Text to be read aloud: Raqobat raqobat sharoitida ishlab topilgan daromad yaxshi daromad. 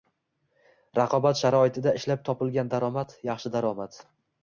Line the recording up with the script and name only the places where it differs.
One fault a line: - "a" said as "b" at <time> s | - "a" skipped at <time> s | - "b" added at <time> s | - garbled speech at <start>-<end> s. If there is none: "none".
- "raqobat" skipped at 1.4 s